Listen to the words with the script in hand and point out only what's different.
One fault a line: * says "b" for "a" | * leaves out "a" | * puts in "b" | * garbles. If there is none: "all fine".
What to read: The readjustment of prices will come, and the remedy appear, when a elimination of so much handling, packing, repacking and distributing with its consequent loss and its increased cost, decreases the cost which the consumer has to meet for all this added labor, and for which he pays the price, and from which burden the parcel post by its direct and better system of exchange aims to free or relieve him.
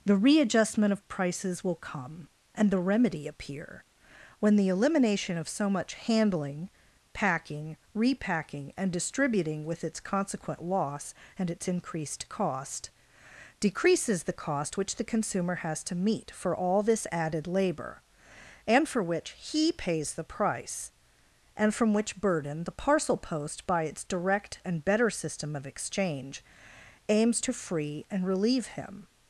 * says "the" for "a"
* says "and" for "or"